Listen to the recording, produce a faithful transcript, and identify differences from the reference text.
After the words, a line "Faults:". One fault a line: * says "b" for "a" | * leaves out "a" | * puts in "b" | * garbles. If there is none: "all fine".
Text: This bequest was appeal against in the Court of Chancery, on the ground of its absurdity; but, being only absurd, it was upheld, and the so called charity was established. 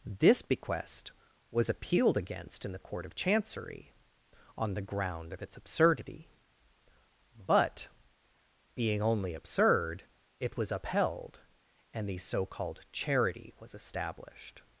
This bequest was appealed against in the Court of Chancery, on the ground of its absurdity; but, being only absurd, it was upheld, and the so called charity was established.
Faults:
* says "appealed" for "appeal"